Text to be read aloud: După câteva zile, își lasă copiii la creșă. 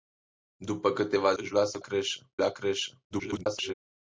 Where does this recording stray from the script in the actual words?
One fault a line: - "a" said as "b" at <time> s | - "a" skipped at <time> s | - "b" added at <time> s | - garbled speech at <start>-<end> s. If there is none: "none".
- "zile" skipped at 1.3 s
- "copiii" said as "creșă" at 1.8 s
- garbled speech at 3.1-3.7 s